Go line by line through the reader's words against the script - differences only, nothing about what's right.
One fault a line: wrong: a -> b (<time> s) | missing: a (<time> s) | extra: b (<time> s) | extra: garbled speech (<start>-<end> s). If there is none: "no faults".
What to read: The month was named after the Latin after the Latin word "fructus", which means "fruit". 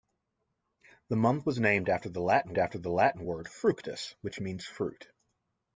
no faults